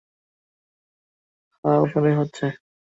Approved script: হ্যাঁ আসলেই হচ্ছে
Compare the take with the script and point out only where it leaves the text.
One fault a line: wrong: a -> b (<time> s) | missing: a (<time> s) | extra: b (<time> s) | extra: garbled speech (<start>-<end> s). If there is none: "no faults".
no faults